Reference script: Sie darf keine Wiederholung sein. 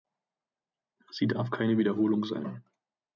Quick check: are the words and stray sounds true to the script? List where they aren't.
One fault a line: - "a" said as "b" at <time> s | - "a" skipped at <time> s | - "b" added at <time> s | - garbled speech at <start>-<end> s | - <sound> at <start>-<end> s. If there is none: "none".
none